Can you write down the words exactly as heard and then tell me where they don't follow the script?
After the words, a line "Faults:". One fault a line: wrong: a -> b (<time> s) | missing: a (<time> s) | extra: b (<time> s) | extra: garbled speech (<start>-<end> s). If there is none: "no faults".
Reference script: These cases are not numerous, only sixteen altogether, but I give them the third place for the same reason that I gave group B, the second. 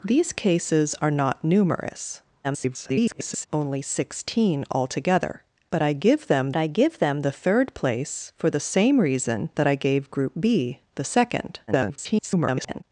These cases are not numerous, [garbled] only sixteen altogether, but I give them I give them the third place for the same reason that I gave group B, the second. [garbled]
Faults:
extra: garbled speech (2.4-3.5 s)
extra: I give them (6.6 s)
extra: garbled speech (11.7-12.8 s)